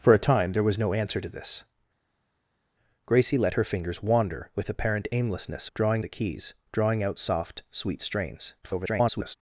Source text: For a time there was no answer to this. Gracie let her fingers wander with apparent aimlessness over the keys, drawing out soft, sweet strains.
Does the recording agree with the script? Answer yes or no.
no